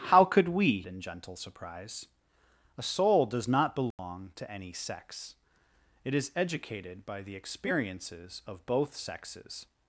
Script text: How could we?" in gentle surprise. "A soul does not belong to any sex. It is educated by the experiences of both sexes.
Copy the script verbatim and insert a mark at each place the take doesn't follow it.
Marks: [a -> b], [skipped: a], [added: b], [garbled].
How could we?" in gentle surprise. "A soul does not belong to any sex. It is educated by the experiences of both sexes.